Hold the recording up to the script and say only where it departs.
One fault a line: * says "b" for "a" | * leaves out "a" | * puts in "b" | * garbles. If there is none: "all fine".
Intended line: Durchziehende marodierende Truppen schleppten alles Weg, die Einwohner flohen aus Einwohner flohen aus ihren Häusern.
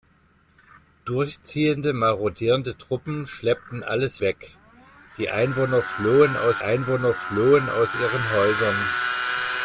all fine